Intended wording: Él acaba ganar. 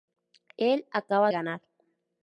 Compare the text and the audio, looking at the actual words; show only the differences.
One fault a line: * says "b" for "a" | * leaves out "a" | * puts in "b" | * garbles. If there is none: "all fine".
all fine